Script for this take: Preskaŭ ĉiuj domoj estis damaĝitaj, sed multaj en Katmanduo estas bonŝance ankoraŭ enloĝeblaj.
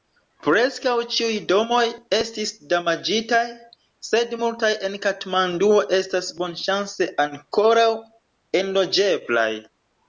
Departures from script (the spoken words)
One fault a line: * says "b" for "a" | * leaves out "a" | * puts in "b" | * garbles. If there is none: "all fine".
all fine